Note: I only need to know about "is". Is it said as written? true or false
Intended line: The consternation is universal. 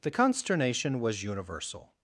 false